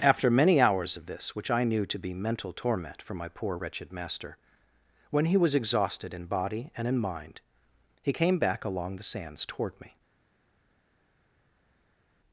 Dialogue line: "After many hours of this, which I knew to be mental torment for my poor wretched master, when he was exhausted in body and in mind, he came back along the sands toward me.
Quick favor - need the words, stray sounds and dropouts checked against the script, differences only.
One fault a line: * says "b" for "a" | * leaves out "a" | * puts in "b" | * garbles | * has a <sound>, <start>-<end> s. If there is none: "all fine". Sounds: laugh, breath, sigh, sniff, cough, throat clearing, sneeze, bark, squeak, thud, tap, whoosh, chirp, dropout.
all fine